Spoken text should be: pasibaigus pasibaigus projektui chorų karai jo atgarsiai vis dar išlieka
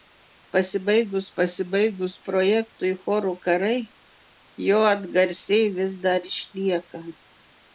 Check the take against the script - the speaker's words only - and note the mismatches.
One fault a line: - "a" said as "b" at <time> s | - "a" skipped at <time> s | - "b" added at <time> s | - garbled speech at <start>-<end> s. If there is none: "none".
none